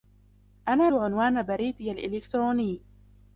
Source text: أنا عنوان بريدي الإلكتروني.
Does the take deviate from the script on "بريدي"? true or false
false